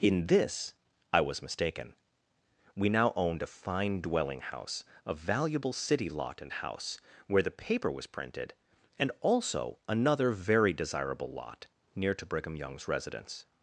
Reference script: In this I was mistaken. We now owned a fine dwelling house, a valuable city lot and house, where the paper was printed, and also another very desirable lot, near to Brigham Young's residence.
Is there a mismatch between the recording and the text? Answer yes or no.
no